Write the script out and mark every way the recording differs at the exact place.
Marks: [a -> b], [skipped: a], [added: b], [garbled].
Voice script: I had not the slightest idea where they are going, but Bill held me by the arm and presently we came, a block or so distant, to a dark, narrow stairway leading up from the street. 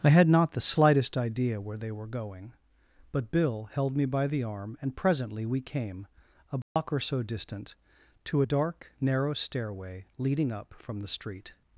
I had not the slightest idea where they [are -> were] going, but Bill held me by the arm and presently we came, a block or so distant, to a dark, narrow stairway leading up from the street.